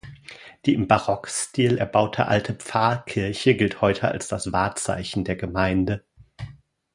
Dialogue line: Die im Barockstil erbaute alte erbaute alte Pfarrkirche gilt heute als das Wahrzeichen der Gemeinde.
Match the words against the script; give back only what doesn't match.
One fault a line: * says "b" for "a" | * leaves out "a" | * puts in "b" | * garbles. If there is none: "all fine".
* leaves out "erbaute alte"